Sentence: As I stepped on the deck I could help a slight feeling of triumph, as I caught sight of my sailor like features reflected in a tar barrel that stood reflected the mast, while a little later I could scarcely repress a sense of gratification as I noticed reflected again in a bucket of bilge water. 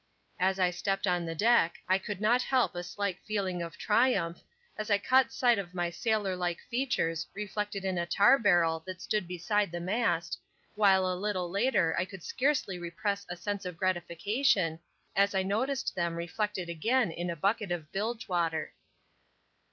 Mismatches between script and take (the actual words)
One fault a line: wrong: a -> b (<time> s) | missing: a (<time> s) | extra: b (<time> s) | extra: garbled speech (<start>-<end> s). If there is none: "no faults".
extra: not (2.2 s)
wrong: reflected -> beside (9.3 s)
extra: them (16.0 s)